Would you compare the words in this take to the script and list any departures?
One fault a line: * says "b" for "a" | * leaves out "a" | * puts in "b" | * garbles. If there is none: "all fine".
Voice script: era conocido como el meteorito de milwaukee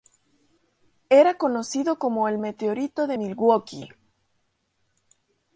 all fine